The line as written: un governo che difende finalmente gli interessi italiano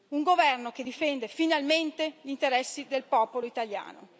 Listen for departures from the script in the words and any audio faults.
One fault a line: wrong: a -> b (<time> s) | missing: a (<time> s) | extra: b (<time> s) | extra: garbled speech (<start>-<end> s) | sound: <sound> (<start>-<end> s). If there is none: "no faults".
extra: del popolo (2.9 s)